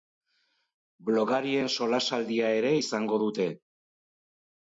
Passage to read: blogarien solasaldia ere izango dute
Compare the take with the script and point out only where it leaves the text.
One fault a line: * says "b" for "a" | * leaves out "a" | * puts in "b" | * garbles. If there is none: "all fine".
all fine